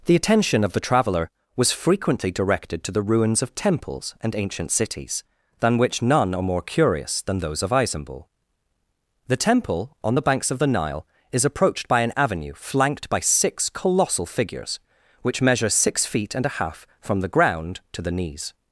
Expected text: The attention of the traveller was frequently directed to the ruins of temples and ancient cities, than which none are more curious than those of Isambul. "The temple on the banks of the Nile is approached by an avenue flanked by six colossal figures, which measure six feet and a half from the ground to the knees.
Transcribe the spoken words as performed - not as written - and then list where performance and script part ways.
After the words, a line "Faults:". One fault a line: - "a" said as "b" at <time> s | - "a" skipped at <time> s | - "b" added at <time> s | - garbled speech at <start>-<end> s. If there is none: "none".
The attention of the traveller was frequently directed to the ruins of temples and ancient cities, than which none are more curious than those of Isambul. "The temple on the banks of the Nile is approached by an avenue flanked by six colossal figures, which measure six feet and a half from the ground to the knees.
Faults:
none